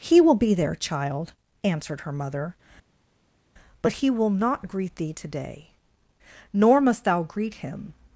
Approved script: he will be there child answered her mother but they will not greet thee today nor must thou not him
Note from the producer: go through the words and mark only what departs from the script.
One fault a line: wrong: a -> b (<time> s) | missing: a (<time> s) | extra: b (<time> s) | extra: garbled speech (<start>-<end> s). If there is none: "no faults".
wrong: they -> he (3.9 s)
wrong: not -> greet (7.2 s)